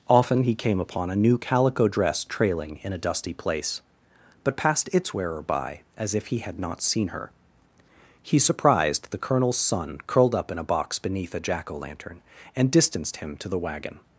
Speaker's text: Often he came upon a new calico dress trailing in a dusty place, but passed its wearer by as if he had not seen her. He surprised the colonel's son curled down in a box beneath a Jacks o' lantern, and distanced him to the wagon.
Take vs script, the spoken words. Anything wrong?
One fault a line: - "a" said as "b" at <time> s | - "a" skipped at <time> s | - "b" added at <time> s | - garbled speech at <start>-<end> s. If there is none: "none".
- "down" said as "up" at 10.4 s
- "Jacks" said as "Jack" at 11.4 s